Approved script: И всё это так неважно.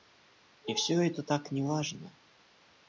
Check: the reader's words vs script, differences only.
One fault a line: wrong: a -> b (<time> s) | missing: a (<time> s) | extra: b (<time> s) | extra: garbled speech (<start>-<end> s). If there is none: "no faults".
no faults